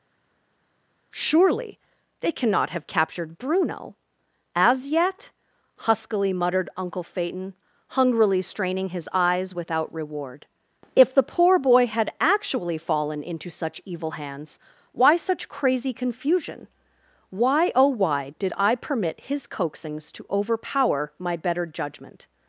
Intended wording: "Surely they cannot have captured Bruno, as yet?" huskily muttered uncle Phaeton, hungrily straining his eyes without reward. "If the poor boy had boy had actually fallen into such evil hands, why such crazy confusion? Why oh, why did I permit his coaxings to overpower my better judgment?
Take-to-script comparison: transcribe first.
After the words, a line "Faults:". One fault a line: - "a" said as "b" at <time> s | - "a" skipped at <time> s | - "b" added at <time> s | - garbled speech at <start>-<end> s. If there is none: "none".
"Surely they cannot have captured Bruno, as yet?" huskily muttered uncle Phaeton, hungrily straining his eyes without reward. "If the poor boy had actually fallen into such evil hands, why such crazy confusion? Why oh, why did I permit his coaxings to overpower my better judgment?
Faults:
- "boy had" skipped at 12.1 s